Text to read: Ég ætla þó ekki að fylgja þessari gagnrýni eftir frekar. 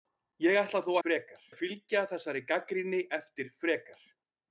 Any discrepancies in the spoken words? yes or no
yes